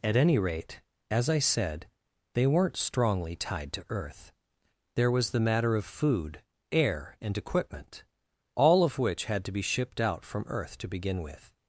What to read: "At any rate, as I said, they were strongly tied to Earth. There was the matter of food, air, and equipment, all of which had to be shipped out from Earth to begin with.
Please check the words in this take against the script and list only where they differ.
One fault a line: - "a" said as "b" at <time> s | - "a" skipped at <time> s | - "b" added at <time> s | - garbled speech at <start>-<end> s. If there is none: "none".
- "were" said as "weren't" at 2.5 s